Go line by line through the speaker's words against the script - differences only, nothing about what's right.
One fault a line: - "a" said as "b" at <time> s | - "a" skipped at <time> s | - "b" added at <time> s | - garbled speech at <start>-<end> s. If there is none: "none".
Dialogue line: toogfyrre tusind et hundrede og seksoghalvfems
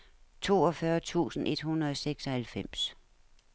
none